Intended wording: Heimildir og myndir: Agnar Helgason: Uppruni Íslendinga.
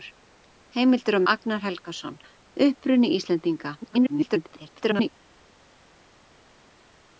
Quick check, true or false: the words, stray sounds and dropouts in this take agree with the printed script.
false